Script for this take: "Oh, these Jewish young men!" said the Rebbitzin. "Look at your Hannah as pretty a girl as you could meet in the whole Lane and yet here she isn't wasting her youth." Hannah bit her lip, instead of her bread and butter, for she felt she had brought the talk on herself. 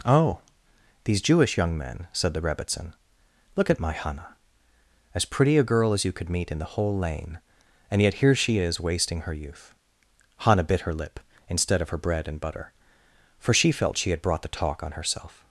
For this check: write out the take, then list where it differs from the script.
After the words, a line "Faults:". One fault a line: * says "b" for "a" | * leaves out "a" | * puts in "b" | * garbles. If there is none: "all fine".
"Oh, these Jewish young men!" said the Rebbitzin. "Look at my Hannah as pretty a girl as you could meet in the whole Lane and yet here she is wasting her youth." Hannah bit her lip, instead of her bread and butter, for she felt she had brought the talk on herself.
Faults:
* says "my" for "your"
* says "is" for "isn't"